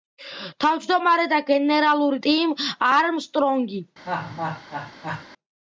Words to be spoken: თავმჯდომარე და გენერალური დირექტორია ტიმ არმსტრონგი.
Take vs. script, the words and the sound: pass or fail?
fail